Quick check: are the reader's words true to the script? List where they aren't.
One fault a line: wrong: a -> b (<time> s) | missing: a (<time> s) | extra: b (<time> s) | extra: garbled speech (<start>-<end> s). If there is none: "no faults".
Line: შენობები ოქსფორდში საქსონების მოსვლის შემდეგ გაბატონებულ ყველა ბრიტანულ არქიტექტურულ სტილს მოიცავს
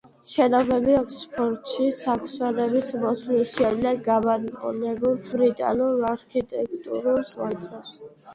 missing: ყველა (5.2 s)
missing: სტილს (7.2 s)